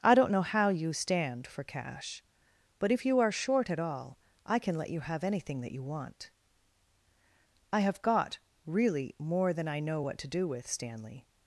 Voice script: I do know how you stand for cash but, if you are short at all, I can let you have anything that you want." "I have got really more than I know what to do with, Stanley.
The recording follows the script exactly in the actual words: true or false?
false